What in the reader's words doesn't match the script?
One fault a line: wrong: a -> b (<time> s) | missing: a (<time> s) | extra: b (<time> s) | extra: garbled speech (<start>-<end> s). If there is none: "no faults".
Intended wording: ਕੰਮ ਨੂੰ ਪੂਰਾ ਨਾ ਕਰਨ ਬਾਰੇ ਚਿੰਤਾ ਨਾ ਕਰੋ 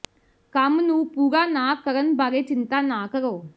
no faults